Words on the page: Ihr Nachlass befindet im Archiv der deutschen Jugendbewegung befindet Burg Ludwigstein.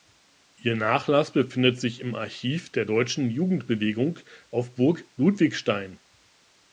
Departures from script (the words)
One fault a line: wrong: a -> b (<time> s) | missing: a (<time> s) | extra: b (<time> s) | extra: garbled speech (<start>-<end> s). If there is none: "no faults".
extra: sich (1.8 s)
wrong: befindet -> auf (4.5 s)